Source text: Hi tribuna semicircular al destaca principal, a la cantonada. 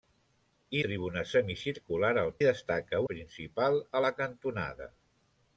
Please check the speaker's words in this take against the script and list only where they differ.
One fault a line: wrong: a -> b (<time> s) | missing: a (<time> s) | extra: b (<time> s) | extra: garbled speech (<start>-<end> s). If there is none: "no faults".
no faults